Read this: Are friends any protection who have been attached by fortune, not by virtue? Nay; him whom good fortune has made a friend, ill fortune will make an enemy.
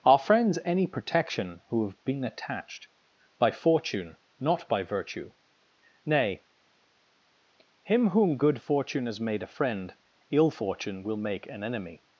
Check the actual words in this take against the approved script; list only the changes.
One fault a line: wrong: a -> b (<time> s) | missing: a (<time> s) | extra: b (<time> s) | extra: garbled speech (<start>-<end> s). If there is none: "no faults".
no faults